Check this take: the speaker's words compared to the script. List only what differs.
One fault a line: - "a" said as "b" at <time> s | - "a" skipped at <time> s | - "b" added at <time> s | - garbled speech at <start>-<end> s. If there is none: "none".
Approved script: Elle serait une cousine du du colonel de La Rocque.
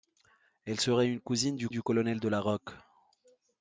none